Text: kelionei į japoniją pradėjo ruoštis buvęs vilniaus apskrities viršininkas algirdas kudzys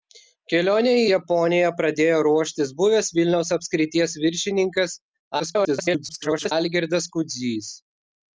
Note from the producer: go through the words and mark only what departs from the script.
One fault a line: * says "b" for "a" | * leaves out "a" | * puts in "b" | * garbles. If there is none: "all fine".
* garbles